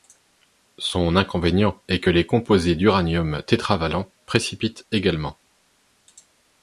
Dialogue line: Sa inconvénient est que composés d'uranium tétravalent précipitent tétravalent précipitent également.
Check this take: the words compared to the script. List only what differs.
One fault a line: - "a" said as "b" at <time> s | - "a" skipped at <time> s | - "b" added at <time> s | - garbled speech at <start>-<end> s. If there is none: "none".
- "Sa" said as "Son" at 0.8 s
- "les" added at 2.1 s
- "tétravalent précipitent" skipped at 4.9 s